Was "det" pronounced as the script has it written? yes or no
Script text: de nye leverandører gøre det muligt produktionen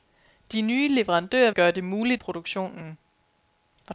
yes